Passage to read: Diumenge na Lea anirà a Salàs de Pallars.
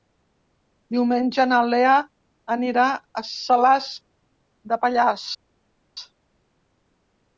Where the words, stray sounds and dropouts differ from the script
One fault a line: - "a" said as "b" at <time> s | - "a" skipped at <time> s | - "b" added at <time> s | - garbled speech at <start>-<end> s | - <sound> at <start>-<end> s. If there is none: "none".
none